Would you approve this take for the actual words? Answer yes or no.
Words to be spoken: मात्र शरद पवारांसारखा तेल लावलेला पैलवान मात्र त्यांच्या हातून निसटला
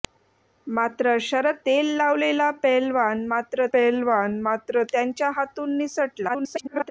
no